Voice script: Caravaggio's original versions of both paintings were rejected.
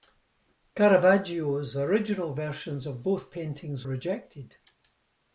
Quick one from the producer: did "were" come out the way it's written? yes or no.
no